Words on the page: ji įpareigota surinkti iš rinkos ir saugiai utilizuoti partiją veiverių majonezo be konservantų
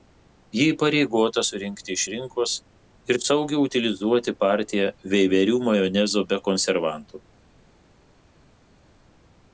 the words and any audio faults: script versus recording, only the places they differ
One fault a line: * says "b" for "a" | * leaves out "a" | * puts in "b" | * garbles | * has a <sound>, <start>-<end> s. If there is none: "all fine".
all fine